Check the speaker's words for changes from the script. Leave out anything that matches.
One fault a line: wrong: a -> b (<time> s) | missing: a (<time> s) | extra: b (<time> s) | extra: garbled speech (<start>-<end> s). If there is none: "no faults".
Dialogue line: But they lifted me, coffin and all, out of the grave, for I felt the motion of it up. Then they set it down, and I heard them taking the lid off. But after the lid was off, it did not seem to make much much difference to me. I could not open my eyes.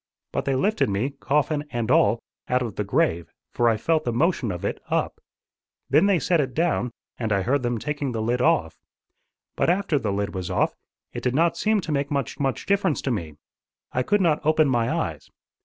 no faults